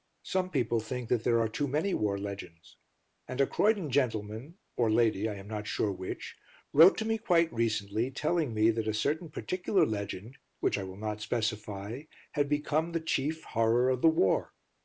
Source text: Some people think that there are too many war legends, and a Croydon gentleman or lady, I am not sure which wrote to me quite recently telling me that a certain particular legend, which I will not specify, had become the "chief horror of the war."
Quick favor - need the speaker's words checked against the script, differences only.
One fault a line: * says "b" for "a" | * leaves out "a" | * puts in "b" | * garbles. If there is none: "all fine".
all fine